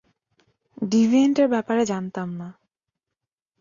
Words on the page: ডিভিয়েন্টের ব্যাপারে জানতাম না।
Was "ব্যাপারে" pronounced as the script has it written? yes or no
yes